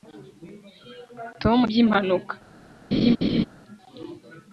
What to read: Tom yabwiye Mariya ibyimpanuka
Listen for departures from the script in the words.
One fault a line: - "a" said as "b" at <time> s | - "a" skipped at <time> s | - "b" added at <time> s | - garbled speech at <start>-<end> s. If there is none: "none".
- "yabwiye Mariya" skipped at 1.6 s